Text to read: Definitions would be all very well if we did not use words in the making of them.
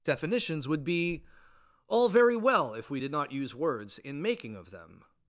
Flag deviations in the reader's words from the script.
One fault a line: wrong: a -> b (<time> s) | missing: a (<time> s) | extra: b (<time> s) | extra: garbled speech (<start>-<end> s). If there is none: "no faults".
missing: the (4.2 s)